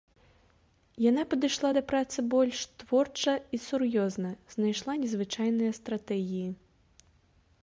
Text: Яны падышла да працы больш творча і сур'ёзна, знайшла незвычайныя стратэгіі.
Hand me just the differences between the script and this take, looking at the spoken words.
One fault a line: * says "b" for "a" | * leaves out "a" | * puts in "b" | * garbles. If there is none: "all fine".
* says "Яна" for "Яны"